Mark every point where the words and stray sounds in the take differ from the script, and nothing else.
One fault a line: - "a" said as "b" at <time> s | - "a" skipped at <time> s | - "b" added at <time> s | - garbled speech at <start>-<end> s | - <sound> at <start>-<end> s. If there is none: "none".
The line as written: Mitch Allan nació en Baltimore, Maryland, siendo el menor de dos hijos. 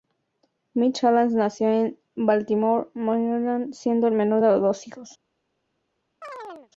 - chirp at 6.2-6.7 s